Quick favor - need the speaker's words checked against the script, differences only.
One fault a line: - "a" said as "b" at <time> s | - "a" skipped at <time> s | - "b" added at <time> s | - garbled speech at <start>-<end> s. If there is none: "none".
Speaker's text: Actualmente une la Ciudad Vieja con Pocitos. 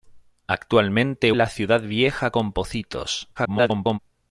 - "une" skipped at 1.3 s
- garbled speech at 3.4-4.0 s